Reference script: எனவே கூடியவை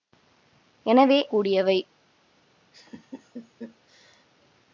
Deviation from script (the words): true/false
false